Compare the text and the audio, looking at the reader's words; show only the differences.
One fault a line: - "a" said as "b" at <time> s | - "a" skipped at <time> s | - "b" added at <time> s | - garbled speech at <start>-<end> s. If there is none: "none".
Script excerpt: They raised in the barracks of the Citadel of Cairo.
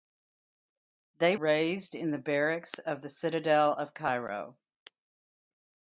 none